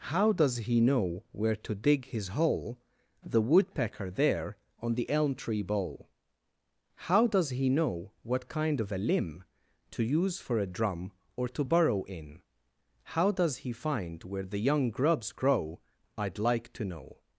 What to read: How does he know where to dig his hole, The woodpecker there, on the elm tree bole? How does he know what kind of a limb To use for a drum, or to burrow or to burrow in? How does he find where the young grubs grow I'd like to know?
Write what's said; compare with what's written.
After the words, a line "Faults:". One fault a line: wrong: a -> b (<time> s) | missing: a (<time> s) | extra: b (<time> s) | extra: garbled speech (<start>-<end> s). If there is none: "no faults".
How does he know where to dig his hole, The woodpecker there, on the elm tree bole? How does he know what kind of a limb To use for a drum, or to burrow in? How does he find where the young grubs grow I'd like to know?
Faults:
missing: or to burrow (12.0 s)